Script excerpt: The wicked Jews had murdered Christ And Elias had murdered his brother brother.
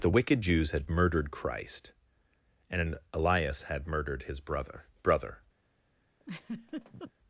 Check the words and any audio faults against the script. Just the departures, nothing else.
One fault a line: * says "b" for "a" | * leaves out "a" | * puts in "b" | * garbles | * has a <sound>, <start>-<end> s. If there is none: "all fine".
* has a laugh, 6.2-7.1 s